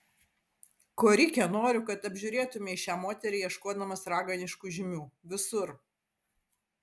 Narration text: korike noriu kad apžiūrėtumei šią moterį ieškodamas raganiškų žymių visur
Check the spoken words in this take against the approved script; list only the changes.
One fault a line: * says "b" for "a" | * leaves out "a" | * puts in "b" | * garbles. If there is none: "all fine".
all fine